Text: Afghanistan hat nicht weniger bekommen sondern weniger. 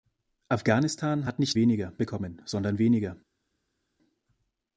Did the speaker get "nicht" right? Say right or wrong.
right